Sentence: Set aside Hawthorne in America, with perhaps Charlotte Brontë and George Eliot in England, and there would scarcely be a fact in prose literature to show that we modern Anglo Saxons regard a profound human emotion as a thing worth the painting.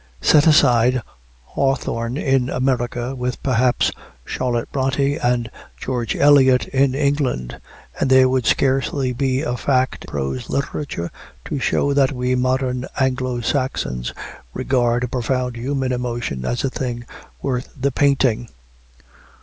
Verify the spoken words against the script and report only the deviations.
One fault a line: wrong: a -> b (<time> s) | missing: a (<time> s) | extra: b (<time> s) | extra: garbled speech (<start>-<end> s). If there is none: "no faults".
missing: in (10.0 s)